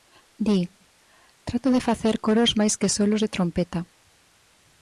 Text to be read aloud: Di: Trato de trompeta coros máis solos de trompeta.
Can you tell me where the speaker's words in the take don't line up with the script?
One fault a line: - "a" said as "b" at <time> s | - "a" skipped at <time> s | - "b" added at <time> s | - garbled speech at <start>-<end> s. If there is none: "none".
- "trompeta" said as "facer" at 1.9 s
- "que" added at 2.8 s